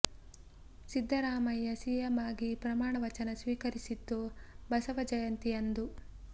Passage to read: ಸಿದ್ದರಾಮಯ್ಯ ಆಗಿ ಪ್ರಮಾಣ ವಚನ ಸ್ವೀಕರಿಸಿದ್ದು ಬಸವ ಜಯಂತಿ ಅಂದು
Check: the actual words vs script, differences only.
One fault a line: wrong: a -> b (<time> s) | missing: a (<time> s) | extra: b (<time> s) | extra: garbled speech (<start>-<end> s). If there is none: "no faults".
extra: ಸಿಎಂ (1.8 s)